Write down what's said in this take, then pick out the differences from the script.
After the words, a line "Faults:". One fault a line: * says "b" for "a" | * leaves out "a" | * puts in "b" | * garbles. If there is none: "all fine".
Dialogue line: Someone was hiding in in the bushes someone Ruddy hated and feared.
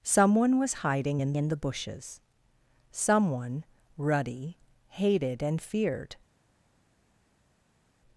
Someone was hiding in in the bushes someone Ruddy hated and feared.
Faults:
all fine